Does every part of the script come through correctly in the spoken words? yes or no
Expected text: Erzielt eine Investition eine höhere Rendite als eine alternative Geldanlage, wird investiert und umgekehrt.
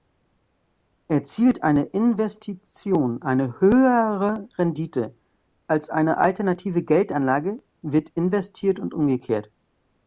yes